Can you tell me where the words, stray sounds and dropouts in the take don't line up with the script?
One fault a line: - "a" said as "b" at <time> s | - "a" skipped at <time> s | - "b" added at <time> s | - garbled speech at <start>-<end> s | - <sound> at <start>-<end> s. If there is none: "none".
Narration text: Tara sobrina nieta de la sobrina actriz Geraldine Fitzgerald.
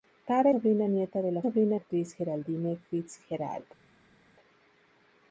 none